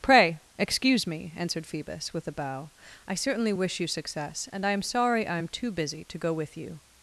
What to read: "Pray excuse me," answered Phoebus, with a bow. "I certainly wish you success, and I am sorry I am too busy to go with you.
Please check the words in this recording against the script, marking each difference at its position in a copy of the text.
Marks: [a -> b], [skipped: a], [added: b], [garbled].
"Pray excuse me," answered Phoebus, with a bow. "I certainly wish you success, and I am sorry I am too busy to go with you.